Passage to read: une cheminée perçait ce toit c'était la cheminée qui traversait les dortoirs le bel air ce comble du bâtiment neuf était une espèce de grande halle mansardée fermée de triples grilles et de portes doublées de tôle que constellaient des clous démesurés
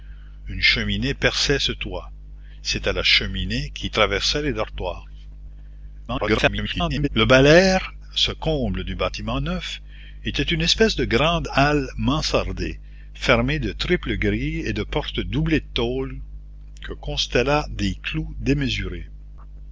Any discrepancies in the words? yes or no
yes